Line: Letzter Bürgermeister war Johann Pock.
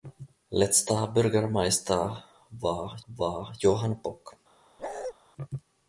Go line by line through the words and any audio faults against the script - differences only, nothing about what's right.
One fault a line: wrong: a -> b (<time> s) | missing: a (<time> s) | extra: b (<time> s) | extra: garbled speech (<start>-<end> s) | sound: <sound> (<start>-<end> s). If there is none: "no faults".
extra: war (3.1 s)
sound: bark (4.8-5.1 s)